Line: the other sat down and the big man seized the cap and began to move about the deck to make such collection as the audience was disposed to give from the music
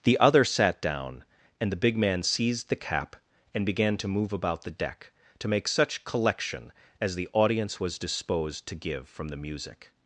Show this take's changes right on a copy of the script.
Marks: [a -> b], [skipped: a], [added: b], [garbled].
the other sat down and the big man seized the cap and began to move about the deck to make such collection as the audience was disposed to give from the music